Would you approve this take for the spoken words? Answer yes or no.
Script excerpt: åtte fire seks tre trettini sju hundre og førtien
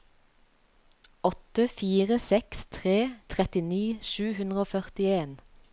yes